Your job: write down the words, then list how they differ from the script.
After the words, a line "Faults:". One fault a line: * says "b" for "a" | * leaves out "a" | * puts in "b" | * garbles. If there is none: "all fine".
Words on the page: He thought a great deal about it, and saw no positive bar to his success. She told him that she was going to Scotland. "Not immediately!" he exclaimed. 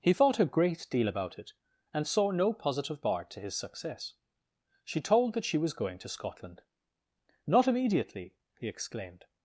He thought a great deal about it, and saw no positive bar to his success. She told that she was going to Scotland. "Not immediately!" he exclaimed.
Faults:
* leaves out "him"